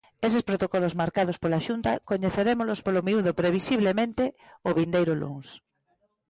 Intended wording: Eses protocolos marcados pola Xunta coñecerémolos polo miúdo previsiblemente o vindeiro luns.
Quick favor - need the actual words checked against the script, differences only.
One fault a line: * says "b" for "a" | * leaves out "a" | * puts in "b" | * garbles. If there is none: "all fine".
all fine